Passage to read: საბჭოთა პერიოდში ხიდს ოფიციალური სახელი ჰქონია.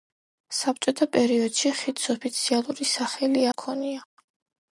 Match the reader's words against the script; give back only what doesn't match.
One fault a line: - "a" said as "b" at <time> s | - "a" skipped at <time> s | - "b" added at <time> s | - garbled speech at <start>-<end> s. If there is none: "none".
none